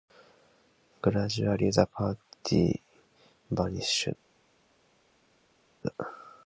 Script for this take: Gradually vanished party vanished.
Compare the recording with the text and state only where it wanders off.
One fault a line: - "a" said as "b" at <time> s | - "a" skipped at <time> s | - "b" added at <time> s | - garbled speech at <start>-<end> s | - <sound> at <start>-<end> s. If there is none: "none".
- "vanished" said as "the" at 1.7 s